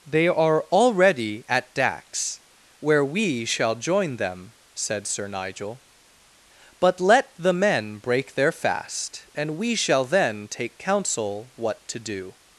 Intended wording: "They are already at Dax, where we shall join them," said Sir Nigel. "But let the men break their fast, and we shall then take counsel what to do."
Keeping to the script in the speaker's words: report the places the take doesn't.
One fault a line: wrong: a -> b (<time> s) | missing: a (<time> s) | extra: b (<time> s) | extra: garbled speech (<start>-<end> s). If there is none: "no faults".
no faults